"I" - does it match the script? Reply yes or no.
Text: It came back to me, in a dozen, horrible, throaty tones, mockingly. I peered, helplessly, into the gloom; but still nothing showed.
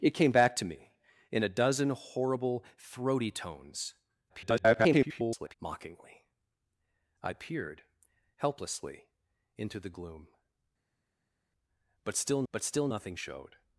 yes